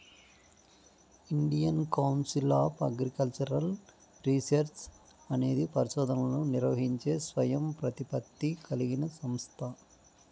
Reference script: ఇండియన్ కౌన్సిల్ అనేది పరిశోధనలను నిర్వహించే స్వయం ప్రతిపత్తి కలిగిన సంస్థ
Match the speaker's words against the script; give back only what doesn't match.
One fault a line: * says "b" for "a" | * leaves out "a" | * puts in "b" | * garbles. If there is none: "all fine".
* puts in "ఆఫ్ అగ్రికల్చరల్ రీసెర్చ్"